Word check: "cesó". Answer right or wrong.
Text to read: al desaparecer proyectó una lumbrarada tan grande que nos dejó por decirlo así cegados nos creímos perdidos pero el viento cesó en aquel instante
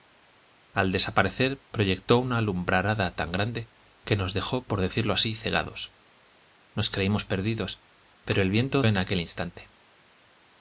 wrong